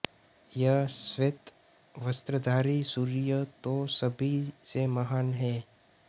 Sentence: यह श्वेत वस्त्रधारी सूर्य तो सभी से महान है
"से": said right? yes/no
yes